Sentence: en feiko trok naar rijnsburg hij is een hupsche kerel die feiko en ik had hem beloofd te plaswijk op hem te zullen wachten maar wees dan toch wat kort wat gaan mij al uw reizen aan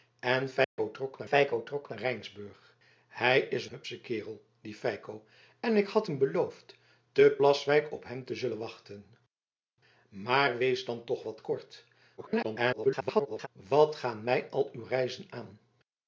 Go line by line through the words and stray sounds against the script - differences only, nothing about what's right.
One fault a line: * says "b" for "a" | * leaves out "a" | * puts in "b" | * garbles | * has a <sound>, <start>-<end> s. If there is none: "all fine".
* has a dropout, 0.6-0.8 s
* puts in "feiko trok naar"
* leaves out "een"
* garbles